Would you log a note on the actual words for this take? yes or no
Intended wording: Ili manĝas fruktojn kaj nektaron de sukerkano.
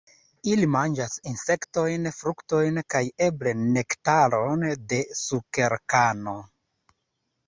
yes